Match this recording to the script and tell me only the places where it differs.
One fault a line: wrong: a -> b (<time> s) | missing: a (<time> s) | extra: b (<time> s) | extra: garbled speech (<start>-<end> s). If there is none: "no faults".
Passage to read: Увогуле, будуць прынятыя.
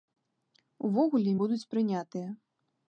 no faults